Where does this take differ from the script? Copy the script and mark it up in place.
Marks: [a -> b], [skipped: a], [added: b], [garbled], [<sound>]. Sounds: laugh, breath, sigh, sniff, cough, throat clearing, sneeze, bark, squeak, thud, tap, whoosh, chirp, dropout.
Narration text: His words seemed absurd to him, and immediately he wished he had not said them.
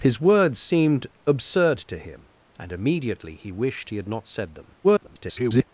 His words seemed absurd to him, and immediately he wished he had not said them. [garbled]